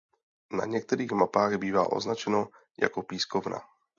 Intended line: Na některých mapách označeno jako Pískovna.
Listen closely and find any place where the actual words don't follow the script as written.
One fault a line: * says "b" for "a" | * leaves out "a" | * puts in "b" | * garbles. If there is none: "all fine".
* puts in "bývá"